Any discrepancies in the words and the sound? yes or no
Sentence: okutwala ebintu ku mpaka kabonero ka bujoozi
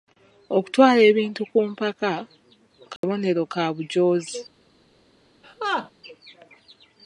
yes